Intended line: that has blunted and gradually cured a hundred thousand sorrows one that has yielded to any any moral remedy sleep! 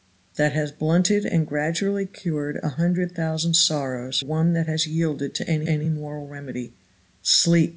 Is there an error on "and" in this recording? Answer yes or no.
no